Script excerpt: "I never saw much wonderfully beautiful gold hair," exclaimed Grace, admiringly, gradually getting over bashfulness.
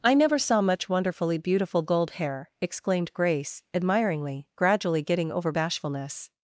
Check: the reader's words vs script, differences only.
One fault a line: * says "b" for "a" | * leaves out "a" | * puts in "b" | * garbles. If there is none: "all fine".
all fine